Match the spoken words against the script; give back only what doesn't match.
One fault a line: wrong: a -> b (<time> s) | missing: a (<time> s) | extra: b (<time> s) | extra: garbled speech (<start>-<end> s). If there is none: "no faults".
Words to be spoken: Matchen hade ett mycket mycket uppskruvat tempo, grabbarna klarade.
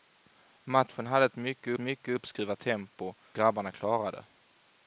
no faults